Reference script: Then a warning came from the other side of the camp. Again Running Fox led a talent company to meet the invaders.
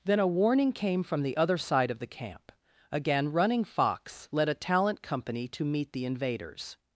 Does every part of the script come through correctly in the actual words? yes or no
yes